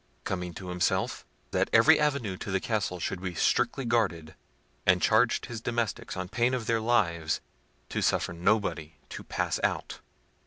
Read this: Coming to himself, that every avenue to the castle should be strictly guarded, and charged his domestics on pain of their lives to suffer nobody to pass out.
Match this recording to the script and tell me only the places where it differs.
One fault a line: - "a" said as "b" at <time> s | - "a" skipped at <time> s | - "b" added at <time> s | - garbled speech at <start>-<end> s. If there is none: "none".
none